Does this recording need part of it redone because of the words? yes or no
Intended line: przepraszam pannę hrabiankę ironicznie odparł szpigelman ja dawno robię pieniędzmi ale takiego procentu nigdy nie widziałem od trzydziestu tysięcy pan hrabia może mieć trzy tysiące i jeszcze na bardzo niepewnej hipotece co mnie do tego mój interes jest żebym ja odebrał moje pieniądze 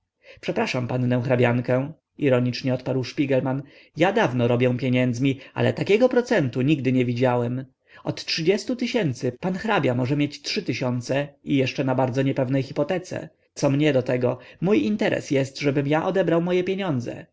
no